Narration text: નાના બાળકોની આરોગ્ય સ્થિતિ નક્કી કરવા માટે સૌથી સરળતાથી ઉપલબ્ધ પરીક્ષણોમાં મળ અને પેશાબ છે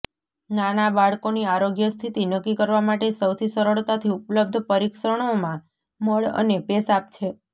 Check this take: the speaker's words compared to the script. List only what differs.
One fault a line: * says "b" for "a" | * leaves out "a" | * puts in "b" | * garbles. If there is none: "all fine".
all fine